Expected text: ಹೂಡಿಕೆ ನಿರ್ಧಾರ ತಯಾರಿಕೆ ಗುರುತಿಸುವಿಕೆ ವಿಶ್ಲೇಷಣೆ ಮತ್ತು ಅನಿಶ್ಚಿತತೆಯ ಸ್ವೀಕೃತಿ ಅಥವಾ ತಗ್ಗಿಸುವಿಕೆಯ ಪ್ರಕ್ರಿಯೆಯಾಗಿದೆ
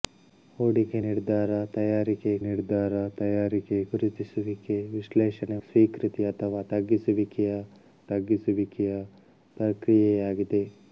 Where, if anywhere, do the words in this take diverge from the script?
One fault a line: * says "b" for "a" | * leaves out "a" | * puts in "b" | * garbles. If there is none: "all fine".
* puts in "ನಿರ್ಧಾರ ತಯಾರಿಕೆ"
* leaves out "ಮತ್ತು ಅನಿಶ್ಚಿತತೆಯ"
* puts in "ತಗ್ಗಿಸುವಿಕೆಯ"